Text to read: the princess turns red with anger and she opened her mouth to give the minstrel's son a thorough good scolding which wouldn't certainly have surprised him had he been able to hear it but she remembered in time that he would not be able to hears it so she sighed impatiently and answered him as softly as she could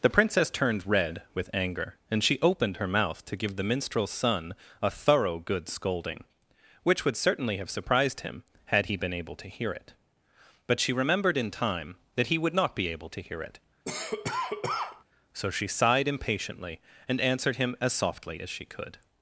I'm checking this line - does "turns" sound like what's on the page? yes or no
no